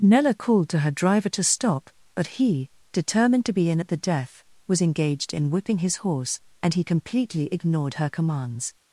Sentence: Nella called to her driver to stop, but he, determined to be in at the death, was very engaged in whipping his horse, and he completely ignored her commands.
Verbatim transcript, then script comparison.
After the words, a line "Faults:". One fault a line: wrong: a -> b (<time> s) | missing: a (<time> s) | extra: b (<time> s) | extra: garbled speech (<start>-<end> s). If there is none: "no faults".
Nella called to her driver to stop, but he, determined to be in at the death, was engaged in whipping his horse, and he completely ignored her commands.
Faults:
missing: very (4.8 s)